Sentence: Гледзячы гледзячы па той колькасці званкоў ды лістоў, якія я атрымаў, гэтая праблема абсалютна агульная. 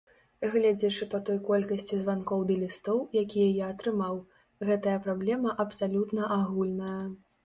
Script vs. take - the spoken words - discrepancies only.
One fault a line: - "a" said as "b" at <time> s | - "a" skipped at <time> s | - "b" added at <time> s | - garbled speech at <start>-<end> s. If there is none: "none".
- "гледзячы" skipped at 1.1 s